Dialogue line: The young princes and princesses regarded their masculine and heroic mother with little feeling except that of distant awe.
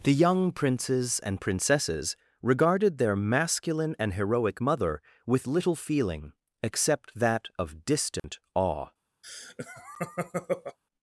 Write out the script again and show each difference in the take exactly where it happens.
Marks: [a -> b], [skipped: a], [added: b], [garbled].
The young princes and princesses regarded their masculine and heroic mother with little feeling except that of distant awe.